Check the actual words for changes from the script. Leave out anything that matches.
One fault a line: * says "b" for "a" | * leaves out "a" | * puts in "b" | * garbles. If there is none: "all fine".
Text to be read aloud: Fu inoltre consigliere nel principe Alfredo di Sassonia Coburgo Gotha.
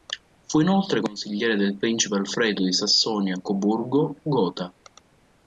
* says "del" for "nel"